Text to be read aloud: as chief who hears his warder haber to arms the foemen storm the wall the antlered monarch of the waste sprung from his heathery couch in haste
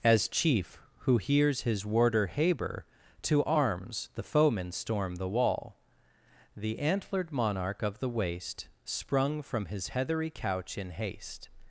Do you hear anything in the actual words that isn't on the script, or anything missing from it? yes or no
no